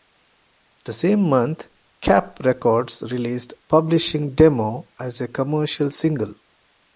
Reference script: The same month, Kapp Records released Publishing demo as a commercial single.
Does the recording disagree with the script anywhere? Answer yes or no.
no